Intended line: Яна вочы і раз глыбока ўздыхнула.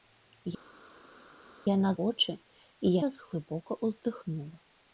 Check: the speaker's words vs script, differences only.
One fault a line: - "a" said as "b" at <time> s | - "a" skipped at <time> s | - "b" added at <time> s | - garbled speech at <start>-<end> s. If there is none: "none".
none